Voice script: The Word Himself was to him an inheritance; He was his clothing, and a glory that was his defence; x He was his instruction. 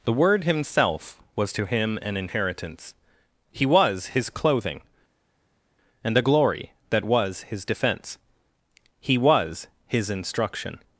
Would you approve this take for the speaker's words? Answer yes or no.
no